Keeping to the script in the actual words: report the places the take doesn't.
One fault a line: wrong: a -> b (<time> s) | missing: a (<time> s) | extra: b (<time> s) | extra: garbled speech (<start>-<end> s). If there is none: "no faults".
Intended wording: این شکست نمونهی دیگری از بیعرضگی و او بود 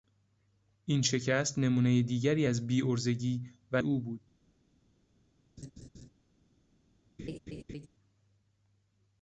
no faults